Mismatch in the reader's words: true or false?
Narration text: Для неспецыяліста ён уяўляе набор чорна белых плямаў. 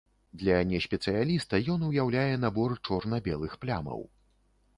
false